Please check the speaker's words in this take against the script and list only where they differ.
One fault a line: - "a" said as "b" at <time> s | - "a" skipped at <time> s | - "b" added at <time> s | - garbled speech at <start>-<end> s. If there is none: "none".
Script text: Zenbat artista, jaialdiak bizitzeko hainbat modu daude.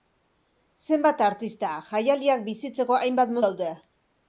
- "modu" skipped at 3.4 s